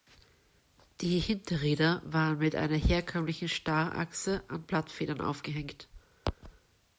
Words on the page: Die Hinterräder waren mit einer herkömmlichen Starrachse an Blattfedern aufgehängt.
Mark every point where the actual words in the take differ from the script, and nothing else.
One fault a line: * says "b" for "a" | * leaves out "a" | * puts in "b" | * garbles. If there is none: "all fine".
all fine